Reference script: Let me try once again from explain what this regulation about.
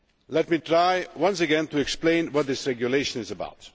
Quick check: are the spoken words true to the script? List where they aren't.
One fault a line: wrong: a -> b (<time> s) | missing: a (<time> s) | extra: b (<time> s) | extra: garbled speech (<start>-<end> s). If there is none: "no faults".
wrong: from -> to (1.7 s)
extra: is (3.2 s)